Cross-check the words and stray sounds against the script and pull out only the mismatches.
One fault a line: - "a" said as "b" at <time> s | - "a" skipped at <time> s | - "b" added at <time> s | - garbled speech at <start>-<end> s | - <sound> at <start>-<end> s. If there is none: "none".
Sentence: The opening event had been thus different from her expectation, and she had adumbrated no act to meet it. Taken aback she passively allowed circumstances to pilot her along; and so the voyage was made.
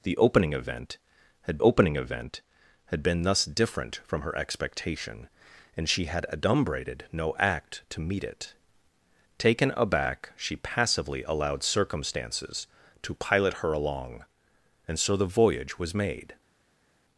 - "opening event had" added at 1.6 s